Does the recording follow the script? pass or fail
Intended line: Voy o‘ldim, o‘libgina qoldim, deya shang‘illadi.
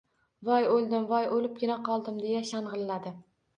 fail